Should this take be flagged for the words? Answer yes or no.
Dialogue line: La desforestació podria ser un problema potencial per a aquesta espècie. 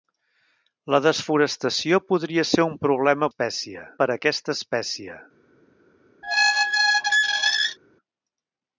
yes